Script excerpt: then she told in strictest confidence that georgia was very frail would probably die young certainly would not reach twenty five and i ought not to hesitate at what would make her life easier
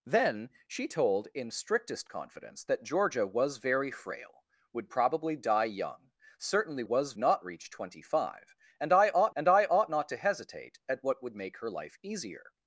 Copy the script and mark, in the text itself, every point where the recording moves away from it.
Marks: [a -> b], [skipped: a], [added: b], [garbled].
then she told in strictest confidence that georgia was very frail would probably die young certainly [would -> was] not reach twenty five and i ought [added: and i ought] not to hesitate at what would make her life easier